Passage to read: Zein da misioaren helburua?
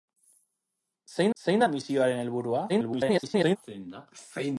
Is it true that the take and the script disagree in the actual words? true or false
true